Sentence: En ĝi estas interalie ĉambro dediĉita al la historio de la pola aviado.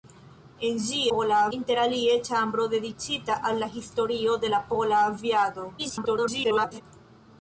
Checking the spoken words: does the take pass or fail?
fail